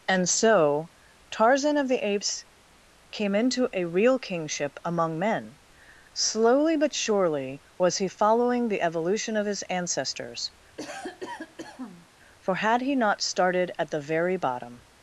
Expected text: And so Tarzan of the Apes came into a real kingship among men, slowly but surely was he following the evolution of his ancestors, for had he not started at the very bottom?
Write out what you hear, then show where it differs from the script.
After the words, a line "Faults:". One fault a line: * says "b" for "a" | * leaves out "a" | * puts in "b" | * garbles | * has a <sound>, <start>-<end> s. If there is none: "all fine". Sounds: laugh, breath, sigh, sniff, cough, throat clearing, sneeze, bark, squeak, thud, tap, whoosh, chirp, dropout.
And so Tarzan of the Apes came into a real kingship among men, slowly but surely was he following the evolution of his ancestors, for had he not started at the very bottom?
Faults:
* has a cough, 10.7-12.1 s